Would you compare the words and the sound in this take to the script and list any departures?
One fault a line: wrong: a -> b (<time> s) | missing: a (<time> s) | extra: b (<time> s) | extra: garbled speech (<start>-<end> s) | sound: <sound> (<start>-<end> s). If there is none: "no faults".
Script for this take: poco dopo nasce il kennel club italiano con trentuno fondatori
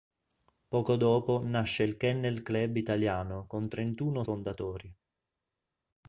no faults